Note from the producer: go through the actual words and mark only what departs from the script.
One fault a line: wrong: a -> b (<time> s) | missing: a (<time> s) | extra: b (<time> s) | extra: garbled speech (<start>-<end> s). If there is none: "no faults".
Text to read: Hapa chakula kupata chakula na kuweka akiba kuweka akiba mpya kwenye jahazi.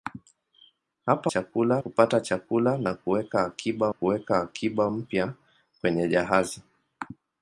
no faults